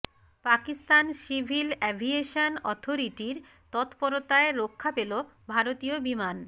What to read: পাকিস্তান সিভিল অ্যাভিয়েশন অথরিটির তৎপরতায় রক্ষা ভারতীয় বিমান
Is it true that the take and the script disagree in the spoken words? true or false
true